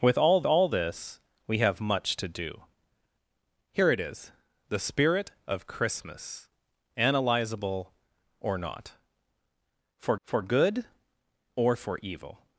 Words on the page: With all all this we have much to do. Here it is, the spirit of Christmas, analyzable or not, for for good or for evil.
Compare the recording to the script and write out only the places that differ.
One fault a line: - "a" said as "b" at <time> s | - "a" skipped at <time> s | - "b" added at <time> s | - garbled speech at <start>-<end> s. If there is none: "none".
none